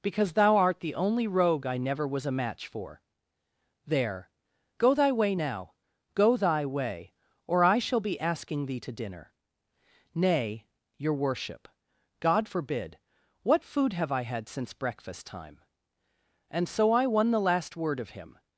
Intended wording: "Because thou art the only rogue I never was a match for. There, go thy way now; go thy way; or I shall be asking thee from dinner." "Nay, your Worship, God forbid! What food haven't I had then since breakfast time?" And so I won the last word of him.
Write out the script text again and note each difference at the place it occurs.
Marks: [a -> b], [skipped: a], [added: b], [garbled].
"Because thou art the only rogue I never was a match for. There, go thy way now; go thy way; or I shall be asking thee [from -> to] dinner." "Nay, your Worship, God forbid! What food [haven't -> have] I had [skipped: then] since breakfast time?" And so I won the last word of him.